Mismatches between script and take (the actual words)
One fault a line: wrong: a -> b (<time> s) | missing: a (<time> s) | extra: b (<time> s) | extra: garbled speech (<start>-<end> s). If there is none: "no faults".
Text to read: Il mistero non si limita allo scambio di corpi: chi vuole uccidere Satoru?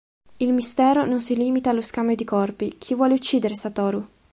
no faults